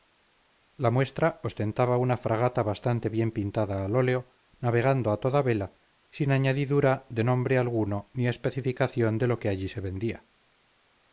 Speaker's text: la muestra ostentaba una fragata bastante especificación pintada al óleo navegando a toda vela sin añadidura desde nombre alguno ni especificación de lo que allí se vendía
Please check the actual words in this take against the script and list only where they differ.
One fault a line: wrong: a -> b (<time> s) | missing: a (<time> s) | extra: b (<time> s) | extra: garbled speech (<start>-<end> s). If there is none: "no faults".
wrong: especificación -> bien (3.1 s)
wrong: desde -> de (7.1 s)